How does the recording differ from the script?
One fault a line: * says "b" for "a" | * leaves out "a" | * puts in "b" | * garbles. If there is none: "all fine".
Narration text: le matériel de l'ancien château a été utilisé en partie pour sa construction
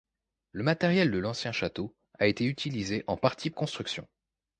* leaves out "pour sa"